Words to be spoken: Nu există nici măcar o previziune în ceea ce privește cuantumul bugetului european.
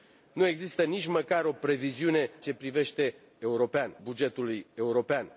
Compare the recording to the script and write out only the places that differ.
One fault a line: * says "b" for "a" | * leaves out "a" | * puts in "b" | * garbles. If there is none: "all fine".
* leaves out "în ceea"
* says "european" for "cuantumul"